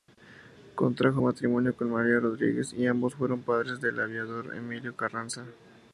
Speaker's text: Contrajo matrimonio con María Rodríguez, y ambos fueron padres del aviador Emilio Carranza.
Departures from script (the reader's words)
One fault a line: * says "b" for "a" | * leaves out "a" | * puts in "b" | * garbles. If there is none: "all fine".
all fine